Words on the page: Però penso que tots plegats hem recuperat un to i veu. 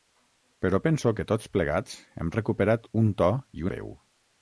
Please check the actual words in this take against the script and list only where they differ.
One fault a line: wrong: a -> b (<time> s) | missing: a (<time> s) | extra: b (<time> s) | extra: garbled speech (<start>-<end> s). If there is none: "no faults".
no faults